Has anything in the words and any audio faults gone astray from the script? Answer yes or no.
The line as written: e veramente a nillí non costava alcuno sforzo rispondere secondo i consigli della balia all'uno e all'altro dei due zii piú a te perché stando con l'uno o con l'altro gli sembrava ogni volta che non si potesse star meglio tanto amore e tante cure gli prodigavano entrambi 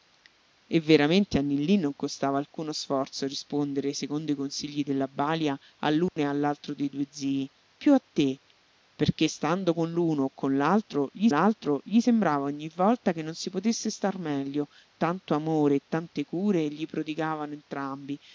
yes